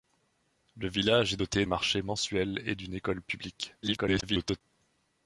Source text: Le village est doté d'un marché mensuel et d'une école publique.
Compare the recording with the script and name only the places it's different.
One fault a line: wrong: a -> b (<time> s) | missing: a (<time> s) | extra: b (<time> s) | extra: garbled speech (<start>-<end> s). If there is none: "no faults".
missing: d'un (1.7 s)
extra: garbled speech (3.8-4.6 s)